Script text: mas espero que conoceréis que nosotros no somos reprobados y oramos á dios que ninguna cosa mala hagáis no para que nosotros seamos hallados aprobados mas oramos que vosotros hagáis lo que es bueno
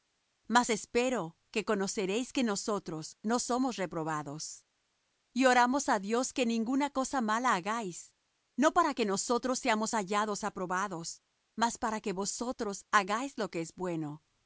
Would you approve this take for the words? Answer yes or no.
no